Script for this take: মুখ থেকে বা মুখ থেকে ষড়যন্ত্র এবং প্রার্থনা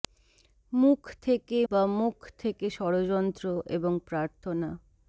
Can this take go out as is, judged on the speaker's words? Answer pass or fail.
pass